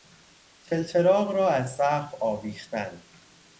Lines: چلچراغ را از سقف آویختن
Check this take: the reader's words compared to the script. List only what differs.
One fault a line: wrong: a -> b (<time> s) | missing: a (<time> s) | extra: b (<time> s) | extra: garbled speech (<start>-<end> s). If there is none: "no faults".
no faults